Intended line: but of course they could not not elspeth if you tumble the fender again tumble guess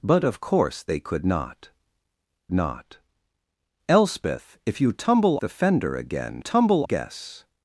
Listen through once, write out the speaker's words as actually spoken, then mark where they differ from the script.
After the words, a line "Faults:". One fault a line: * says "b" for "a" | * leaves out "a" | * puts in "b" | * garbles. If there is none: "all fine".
but of course they could not not elspeth if you tumble the fender again tumble guess
Faults:
all fine